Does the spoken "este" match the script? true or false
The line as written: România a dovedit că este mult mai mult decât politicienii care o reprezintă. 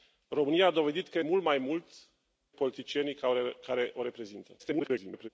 false